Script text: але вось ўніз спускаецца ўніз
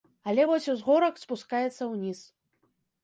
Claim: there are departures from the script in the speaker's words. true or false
true